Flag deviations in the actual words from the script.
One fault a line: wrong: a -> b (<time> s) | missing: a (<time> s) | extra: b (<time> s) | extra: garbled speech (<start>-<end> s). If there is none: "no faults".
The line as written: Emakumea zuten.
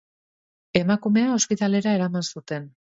extra: ospitalera eraman (1.3 s)